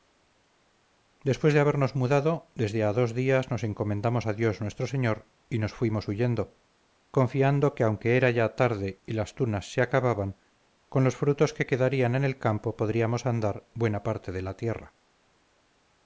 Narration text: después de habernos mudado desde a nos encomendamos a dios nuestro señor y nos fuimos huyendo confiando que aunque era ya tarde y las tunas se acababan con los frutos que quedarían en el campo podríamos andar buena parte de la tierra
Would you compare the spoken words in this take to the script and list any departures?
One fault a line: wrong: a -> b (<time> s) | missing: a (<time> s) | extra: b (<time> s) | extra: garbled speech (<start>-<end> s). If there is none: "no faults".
extra: dos días (2.9 s)